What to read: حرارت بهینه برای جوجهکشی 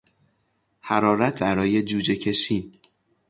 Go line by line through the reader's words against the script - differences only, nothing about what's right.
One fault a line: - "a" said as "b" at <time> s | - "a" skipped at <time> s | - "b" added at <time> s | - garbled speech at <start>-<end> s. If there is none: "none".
- "بهینه" skipped at 1.4 s